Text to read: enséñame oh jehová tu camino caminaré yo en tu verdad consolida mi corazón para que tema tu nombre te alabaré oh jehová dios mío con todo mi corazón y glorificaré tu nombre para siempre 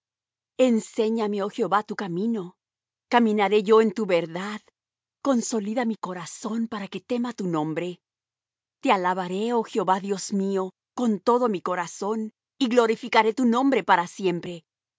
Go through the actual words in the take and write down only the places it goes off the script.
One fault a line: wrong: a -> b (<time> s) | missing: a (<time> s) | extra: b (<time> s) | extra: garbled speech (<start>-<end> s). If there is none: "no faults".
no faults